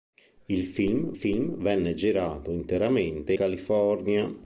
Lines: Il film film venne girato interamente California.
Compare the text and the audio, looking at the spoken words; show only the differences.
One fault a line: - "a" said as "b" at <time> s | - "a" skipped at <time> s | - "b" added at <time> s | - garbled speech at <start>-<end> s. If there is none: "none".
none